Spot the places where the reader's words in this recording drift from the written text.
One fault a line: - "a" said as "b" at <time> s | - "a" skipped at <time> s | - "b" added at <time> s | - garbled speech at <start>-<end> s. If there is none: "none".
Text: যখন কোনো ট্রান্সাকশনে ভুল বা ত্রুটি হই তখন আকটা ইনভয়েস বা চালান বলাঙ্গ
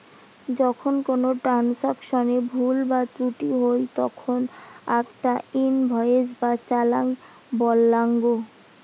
none